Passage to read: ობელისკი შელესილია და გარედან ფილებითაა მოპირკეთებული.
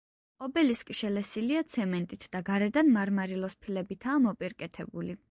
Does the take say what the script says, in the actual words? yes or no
no